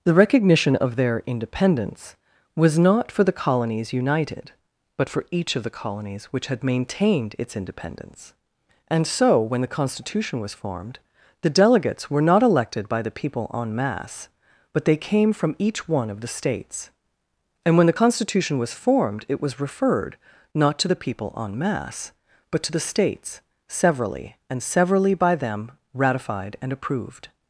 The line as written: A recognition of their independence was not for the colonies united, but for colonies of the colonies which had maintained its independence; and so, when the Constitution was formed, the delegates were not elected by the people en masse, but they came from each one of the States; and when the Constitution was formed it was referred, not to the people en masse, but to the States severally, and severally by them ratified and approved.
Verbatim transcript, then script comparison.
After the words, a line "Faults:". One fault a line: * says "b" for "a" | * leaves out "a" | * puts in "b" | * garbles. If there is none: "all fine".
The recognition of their independence was not for the colonies united, but for each of the colonies which had maintained its independence; and so, when the Constitution was formed, the delegates were not elected by the people en masse, but they came from each one of the States; and when the Constitution was formed it was referred, not to the people en masse, but to the States severally, and severally by them ratified and approved.
Faults:
* says "The" for "A"
* says "each" for "colonies"